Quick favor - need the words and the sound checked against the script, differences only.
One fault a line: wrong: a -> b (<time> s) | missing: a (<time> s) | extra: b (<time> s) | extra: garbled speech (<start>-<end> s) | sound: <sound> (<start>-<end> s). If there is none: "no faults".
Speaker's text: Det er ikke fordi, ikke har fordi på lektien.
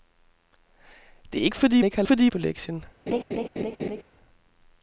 sound: laugh (3.1-4.0 s)